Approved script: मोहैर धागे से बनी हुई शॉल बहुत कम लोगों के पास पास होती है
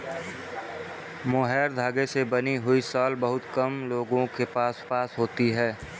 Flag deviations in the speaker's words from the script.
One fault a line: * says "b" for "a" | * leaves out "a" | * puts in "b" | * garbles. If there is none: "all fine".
all fine